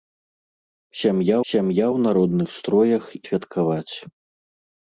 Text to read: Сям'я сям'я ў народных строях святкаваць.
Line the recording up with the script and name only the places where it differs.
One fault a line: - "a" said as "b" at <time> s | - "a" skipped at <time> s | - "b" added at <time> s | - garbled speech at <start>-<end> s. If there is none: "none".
none